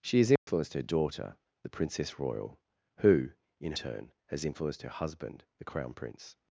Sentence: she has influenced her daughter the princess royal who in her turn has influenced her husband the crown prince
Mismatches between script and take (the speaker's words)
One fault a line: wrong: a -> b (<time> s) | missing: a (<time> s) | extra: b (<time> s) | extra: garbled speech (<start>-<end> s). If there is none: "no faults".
missing: her (3.7 s)